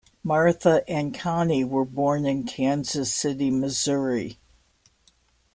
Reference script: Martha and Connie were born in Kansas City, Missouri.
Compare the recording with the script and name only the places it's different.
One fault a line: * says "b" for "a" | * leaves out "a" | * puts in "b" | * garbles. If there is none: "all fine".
all fine